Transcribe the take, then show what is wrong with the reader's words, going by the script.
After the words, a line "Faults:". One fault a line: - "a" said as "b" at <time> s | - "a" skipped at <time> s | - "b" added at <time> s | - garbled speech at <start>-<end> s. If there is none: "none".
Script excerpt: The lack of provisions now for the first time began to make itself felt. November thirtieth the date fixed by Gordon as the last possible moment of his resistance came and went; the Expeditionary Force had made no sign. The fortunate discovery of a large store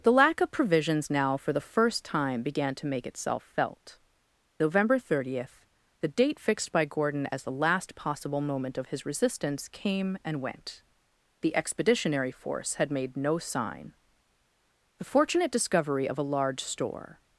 The lack of provisions now for the first time began to make itself felt. November thirtieth the date fixed by Gordon as the last possible moment of his resistance came and went; the Expeditionary Force had made no sign. The fortunate discovery of a large store
Faults:
none